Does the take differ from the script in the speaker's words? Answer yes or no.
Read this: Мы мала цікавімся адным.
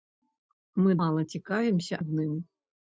no